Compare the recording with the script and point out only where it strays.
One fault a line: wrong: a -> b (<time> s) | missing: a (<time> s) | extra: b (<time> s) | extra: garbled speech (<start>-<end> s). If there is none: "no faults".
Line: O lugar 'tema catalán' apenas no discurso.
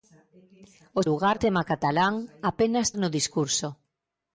no faults